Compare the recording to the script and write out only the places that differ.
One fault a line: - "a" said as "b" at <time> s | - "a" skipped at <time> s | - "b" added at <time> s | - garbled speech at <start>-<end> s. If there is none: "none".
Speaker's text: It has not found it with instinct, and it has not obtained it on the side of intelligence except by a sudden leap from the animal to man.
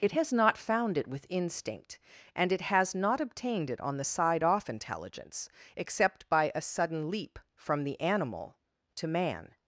- "of" said as "off" at 4.4 s